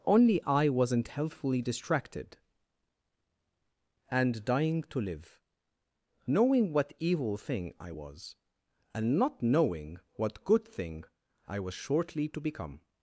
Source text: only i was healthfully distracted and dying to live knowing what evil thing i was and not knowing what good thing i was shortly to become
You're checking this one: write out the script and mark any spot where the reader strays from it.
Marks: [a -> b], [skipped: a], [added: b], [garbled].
only i [was -> wasn't] healthfully distracted and dying to live knowing what evil thing i was and not knowing what good thing i was shortly to become